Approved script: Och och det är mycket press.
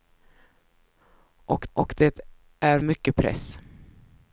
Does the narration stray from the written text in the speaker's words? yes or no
no